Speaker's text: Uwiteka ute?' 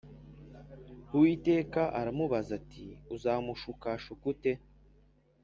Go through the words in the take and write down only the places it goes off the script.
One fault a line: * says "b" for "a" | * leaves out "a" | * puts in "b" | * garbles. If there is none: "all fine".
* puts in "aramubaza ati Uzamushukashuka"